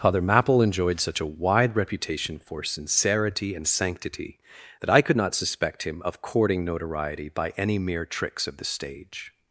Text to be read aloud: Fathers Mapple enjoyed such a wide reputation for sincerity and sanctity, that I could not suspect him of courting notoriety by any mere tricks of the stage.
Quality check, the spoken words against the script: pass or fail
fail